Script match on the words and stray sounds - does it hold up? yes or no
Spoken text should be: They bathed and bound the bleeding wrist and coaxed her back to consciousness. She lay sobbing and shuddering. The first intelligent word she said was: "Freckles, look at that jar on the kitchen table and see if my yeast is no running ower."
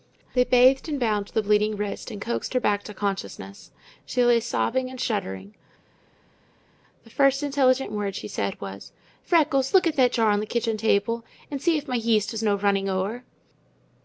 yes